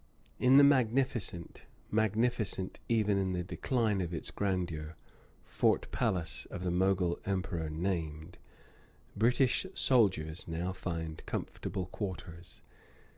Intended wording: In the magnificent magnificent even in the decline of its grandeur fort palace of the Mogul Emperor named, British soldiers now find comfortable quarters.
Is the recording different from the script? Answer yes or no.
no